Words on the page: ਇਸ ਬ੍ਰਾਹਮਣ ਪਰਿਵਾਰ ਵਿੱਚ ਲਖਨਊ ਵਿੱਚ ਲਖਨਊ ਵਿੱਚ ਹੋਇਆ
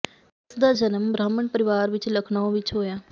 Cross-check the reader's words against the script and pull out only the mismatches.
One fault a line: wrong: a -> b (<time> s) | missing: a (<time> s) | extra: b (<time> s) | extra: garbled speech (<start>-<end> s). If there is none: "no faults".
extra: ਦਾ ਜਨਮ (0.6 s)
missing: ਲਖਨਊ ਵਿੱਚ (2.7 s)